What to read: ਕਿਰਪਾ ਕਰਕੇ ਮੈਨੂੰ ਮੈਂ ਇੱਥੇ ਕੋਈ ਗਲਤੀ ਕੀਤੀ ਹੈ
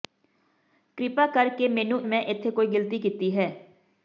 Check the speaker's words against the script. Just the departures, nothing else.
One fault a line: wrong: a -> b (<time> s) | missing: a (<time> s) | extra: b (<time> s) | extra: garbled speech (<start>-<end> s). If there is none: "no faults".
no faults